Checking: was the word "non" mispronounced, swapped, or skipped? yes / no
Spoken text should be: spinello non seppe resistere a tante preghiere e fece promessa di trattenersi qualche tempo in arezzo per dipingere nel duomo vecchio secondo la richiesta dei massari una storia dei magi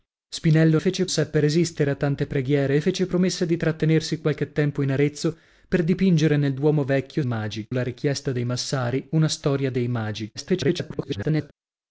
yes